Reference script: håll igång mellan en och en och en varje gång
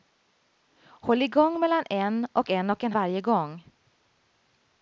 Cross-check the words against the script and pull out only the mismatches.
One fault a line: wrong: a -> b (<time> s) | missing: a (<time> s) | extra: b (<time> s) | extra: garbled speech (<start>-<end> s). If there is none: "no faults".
no faults